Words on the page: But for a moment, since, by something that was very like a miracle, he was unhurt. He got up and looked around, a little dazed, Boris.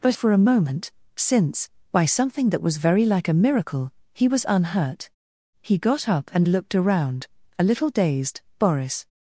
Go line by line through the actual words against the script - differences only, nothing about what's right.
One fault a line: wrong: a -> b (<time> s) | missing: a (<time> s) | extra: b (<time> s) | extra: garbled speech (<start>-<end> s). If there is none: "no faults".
no faults